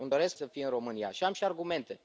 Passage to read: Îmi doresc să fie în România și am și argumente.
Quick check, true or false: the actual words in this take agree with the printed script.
true